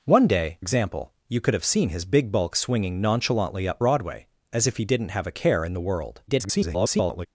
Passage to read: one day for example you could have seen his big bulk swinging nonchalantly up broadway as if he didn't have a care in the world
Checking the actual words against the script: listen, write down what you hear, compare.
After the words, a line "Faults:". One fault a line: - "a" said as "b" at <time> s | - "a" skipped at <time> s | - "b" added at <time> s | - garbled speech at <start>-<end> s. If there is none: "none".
one day example you could have seen his big bulk swinging nonchalantly up broadway as if he didn't have a care in the world [garbled]
Faults:
- "for" skipped at 0.6 s
- garbled speech at 6.3-7.3 s